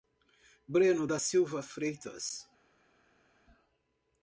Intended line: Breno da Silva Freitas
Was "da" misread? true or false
false